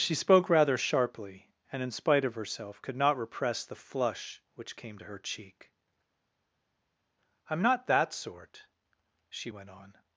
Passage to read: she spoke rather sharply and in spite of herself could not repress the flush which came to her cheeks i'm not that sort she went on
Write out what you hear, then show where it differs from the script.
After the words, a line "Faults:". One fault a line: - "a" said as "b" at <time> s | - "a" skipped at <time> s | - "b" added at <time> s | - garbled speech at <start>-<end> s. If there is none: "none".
she spoke rather sharply and in spite of herself could not repress the flush which came to her cheek i'm not that sort she went on
Faults:
- "cheeks" said as "cheek" at 5.2 s